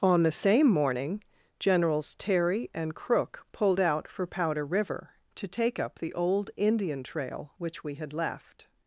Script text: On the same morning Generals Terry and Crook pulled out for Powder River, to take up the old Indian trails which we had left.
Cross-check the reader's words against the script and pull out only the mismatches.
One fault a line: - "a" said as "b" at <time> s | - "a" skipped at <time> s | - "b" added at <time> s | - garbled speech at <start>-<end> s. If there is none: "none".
- "trails" said as "trail" at 7.0 s